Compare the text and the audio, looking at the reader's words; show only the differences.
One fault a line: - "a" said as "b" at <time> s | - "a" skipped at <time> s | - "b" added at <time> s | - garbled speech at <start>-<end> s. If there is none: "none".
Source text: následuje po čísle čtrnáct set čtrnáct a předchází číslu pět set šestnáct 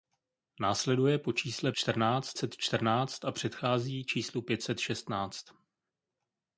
none